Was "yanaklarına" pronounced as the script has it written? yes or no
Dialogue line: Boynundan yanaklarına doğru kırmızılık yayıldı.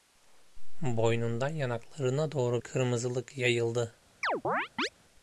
yes